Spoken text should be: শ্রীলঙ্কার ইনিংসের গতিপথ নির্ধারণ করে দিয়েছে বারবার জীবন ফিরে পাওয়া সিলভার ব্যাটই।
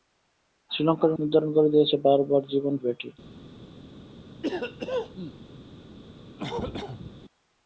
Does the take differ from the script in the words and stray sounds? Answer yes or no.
yes